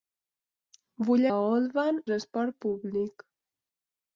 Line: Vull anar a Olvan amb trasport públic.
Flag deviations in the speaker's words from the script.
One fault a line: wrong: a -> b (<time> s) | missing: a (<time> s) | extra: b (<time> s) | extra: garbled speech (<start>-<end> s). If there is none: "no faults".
missing: anar (1.2 s)
missing: amb (2.0 s)